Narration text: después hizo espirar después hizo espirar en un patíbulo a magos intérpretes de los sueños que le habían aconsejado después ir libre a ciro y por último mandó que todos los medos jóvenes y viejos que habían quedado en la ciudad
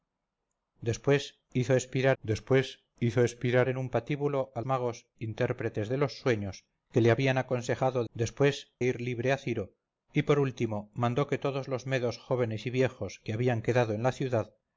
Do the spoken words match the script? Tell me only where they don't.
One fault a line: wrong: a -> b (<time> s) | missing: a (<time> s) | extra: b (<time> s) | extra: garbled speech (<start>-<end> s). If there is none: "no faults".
no faults